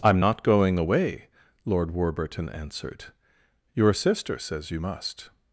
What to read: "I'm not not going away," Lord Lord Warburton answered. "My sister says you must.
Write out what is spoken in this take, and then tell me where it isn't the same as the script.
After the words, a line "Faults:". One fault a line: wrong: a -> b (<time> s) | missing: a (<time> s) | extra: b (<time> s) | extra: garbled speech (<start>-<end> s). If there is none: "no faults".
"I'm not going away," Lord Warburton answered. "Your sister says you must.
Faults:
missing: not (0.4 s)
missing: Lord (1.9 s)
wrong: My -> Your (3.7 s)